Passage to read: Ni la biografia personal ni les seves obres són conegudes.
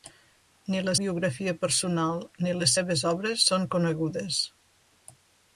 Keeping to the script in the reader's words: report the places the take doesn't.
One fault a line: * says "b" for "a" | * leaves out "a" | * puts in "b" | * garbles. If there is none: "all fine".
all fine